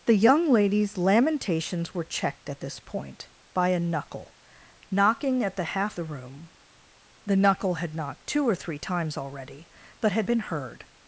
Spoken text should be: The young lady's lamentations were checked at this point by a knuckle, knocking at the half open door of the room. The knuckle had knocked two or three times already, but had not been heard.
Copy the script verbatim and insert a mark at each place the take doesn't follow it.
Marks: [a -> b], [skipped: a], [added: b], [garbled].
The young lady's lamentations were checked at this point by a knuckle, knocking at the half [skipped: open door of] the room. The knuckle had knocked two or three times already, but had [skipped: not] been heard.